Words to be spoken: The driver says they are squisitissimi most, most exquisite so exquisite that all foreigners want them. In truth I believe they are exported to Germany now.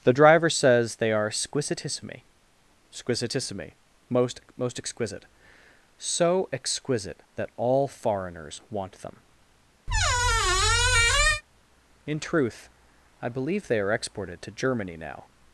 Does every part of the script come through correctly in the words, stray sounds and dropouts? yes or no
no